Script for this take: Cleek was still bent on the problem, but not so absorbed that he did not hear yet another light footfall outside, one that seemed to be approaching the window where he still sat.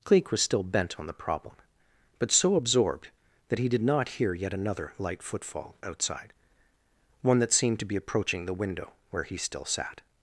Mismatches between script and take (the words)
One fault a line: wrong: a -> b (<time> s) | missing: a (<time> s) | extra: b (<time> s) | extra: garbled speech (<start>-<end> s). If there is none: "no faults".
missing: not (2.3 s)